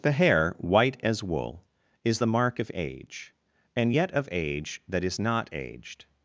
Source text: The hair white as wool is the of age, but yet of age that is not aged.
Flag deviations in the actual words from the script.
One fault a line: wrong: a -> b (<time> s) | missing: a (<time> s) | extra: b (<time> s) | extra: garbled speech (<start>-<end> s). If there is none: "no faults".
extra: mark (2.3 s)
wrong: but -> and (3.7 s)